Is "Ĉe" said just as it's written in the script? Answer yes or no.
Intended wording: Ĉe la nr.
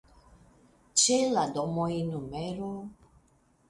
yes